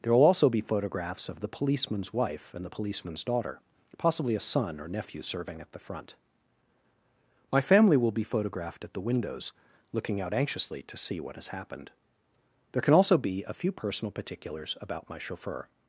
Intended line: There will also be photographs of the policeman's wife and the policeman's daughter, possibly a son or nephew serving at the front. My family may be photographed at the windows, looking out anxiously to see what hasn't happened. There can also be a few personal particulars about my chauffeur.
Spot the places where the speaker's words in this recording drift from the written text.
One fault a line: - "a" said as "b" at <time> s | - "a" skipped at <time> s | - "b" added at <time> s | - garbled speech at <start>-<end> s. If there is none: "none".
- "may" said as "will" at 8.0 s
- "hasn't" said as "has" at 11.4 s